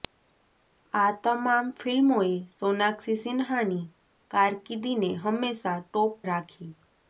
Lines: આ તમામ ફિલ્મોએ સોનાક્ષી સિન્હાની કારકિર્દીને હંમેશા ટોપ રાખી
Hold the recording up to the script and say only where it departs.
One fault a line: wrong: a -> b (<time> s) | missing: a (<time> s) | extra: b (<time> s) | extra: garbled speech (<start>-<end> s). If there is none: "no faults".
no faults